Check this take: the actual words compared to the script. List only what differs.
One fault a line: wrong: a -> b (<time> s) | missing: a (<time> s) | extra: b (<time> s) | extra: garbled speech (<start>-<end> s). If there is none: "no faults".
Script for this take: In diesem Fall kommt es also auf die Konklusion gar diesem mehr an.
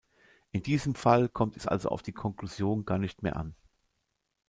wrong: diesem -> nicht (3.0 s)